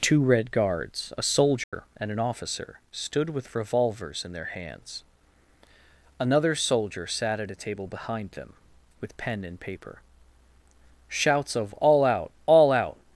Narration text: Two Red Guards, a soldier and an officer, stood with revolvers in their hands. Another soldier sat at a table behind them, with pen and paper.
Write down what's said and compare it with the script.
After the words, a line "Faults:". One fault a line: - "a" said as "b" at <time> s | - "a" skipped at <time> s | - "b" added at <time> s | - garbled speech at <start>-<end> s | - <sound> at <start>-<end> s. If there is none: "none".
Two Red Guards, a soldier and an officer, stood with revolvers in their hands. Another soldier sat at a table behind them, with pen and paper. Shouts of "All out! All out
Faults:
- dropout at 1.6-1.7 s
- "Shouts of All out All out" added at 11.1 s